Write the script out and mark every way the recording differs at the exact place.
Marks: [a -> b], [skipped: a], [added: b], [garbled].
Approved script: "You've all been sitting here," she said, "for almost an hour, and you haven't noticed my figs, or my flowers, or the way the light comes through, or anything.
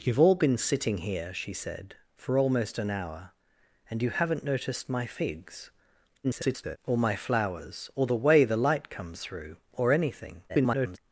"You've all been sitting here," she said, "for almost an hour, and you haven't noticed my figs, [garbled] or my flowers, or the way the light comes through, or anything. [garbled]